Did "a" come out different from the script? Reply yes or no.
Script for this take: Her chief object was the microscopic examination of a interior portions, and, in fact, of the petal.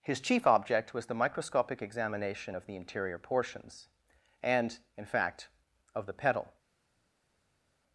yes